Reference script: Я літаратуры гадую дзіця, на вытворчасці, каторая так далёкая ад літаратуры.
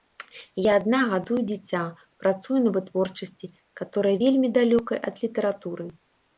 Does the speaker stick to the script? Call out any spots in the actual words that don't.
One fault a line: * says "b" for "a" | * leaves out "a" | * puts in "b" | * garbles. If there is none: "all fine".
* says "адна" for "літаратуры"
* puts in "працую"
* says "вельмі" for "так"